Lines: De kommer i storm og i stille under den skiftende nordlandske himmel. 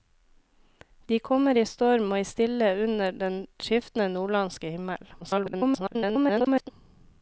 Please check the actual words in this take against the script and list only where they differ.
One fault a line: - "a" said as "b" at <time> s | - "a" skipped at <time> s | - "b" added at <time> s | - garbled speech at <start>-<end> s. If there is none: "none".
- garbled speech at 5.2-6.7 s